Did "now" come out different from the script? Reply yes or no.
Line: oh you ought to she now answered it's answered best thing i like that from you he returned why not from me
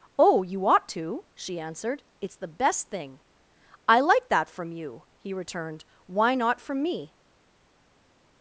yes